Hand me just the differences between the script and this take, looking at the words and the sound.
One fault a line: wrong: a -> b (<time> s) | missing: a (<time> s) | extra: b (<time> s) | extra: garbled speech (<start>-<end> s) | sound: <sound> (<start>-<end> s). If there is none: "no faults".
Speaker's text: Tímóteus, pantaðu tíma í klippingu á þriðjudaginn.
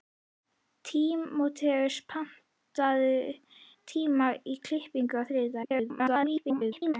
extra: garbled speech (5.6-6.9 s)